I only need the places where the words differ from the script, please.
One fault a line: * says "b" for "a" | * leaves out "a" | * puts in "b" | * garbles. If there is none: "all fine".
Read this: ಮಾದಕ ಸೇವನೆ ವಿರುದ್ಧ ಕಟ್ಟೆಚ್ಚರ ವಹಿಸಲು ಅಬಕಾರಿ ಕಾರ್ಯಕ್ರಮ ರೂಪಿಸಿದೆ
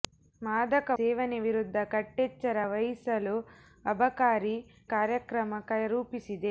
all fine